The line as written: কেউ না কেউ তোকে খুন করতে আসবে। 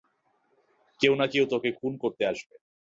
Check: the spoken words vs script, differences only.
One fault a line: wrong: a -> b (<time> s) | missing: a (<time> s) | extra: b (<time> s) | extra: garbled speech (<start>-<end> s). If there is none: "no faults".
no faults